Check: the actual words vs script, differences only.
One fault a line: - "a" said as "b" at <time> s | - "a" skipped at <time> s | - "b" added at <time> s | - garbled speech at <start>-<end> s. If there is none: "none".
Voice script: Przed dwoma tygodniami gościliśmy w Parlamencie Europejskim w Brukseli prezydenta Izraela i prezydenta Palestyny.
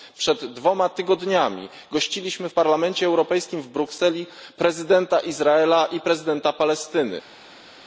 none